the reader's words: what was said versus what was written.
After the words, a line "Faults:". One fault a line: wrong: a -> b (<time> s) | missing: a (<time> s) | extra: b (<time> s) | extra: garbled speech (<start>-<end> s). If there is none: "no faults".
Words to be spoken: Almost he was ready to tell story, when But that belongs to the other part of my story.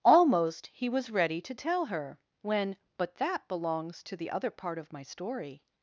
Almost he was ready to tell her, when But that belongs to the other part of my story.
Faults:
wrong: story -> her (1.9 s)